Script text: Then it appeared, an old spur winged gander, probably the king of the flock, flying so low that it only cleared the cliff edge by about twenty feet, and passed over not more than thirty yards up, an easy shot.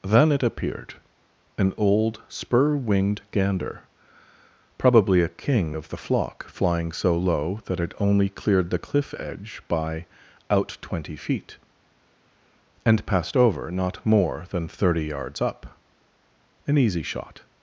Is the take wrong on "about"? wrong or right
wrong